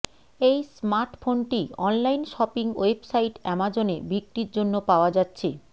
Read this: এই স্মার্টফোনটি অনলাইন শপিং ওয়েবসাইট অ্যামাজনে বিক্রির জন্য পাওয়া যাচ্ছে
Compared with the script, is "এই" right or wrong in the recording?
right